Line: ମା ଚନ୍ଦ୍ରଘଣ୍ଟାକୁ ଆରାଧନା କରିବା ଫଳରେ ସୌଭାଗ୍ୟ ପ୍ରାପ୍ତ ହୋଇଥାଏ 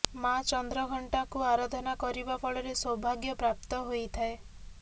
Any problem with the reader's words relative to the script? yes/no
no